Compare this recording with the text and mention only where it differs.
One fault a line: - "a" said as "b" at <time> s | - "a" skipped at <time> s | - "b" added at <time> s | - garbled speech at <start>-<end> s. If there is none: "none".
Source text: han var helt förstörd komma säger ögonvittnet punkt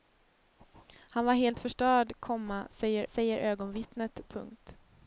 - "säger" added at 3.1 s